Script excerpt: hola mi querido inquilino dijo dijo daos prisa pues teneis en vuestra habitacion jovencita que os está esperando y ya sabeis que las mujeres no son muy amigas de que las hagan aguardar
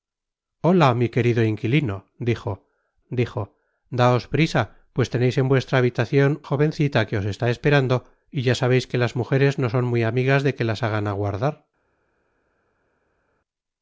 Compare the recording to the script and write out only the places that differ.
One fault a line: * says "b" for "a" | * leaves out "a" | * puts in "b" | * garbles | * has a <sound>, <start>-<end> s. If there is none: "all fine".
all fine